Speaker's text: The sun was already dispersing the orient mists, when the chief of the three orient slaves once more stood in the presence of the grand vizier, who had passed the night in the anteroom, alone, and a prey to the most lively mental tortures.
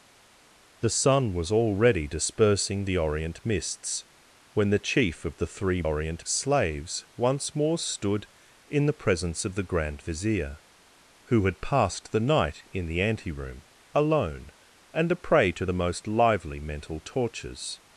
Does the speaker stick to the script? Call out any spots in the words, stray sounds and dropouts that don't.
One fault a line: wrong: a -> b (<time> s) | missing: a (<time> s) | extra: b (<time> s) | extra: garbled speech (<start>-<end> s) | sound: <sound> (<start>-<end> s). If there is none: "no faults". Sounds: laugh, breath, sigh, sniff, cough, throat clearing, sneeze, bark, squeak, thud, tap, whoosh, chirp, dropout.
no faults